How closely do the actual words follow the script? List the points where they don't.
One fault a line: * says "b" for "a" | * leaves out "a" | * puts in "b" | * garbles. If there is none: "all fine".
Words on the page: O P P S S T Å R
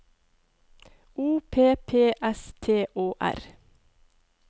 * leaves out "S"